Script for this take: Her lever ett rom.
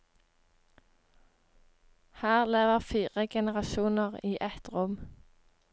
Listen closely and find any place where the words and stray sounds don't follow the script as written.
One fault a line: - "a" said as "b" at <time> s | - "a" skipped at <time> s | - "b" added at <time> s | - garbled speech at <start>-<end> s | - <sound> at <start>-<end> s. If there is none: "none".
- "fire generasjoner i" added at 2.8 s